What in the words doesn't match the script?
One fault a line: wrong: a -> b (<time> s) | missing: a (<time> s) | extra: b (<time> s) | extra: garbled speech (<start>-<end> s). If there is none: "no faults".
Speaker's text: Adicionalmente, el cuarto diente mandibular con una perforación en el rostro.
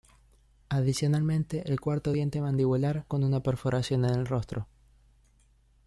no faults